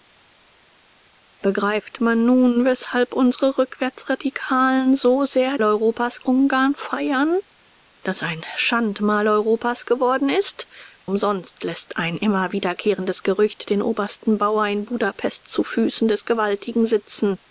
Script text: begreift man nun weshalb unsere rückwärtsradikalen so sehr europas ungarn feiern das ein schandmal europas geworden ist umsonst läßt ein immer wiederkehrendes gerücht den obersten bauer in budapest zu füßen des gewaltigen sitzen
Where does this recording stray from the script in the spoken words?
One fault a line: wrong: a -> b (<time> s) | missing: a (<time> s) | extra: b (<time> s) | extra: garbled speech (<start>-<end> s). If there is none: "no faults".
no faults